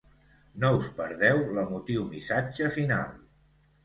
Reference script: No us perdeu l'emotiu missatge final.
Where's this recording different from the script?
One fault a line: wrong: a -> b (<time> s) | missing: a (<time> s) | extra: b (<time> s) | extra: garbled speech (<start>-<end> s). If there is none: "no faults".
no faults